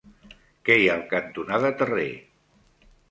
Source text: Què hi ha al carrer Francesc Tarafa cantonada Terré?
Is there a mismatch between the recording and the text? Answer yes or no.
yes